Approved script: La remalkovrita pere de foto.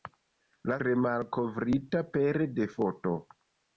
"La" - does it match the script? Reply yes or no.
yes